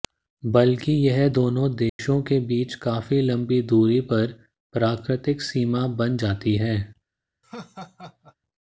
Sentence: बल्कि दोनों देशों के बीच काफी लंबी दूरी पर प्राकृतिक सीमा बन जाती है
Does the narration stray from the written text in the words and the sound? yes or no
yes